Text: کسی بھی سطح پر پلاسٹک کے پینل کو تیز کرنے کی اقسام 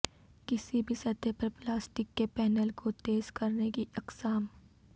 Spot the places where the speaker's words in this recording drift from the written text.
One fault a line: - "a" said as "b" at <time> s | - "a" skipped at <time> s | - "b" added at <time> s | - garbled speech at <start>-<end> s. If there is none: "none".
none